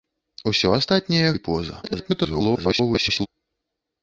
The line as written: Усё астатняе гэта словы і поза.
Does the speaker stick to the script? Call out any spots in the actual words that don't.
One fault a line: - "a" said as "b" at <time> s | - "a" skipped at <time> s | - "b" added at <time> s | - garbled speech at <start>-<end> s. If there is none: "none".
- "гэта словы" skipped at 1.3 s
- garbled speech at 1.8-3.3 s